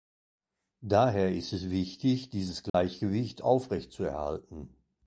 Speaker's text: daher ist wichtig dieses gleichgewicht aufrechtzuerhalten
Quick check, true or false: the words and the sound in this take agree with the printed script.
false